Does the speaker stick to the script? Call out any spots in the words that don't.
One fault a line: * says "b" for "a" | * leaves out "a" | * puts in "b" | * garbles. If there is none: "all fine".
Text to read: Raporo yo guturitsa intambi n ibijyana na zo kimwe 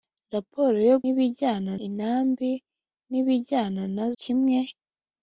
* says "ibijyana" for "guturitsa"
* leaves out "zo"